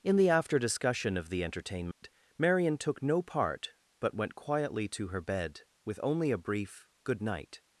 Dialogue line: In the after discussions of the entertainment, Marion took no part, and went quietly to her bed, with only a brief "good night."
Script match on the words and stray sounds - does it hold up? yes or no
no